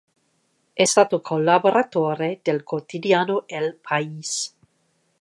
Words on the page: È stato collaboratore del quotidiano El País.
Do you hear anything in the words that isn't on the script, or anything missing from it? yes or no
no